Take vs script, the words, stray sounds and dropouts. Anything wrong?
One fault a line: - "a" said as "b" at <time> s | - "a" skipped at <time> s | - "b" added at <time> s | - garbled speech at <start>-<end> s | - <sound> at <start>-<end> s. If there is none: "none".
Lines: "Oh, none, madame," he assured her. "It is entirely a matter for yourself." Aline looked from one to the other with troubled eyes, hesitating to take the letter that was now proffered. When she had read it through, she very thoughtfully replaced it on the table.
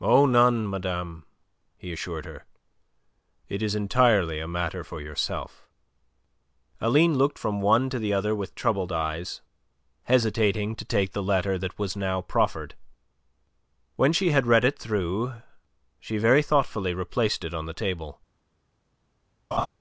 - laugh at 19.5-19.7 s